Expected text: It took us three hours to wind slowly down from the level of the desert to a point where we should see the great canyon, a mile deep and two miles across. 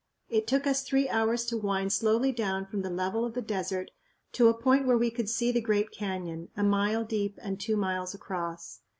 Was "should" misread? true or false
true